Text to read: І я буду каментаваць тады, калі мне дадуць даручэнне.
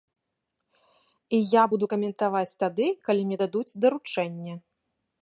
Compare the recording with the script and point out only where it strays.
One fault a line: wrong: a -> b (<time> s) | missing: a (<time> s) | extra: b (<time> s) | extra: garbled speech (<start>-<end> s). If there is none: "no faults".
no faults